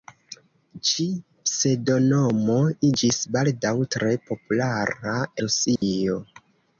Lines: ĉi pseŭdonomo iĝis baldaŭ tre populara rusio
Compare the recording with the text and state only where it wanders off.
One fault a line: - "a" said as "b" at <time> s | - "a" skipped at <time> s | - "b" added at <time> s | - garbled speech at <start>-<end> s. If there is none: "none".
none